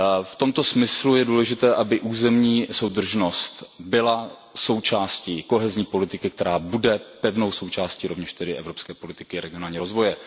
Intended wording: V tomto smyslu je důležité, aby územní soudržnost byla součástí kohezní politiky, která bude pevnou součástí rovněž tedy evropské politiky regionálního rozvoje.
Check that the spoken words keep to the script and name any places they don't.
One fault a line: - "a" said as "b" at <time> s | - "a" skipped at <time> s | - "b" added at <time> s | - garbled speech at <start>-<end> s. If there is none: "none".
none